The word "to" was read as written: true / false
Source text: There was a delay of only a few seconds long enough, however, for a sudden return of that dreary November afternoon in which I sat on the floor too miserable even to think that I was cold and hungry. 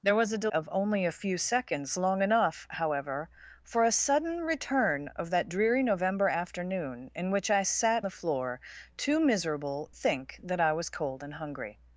false